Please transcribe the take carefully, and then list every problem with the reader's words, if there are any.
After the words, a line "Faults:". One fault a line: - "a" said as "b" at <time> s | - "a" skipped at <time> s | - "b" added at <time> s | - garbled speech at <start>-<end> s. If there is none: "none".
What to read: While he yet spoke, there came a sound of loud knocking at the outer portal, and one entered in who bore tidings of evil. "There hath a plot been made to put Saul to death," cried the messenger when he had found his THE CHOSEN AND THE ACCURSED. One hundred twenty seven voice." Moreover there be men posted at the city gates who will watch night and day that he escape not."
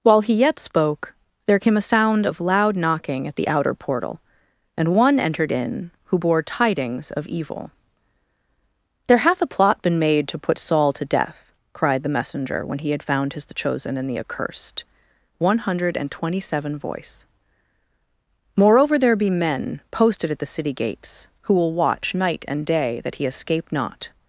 While he yet spoke, there came a sound of loud knocking at the outer portal, and one entered in who bore tidings of evil. "There hath a plot been made to put Saul to death," cried the messenger when he had found his THE CHOSEN AND THE ACCURSED. One hundred and twenty seven voice." Moreover there be men posted at the city gates who will watch night and day that he escape not."
Faults:
- "and" added at 16.0 s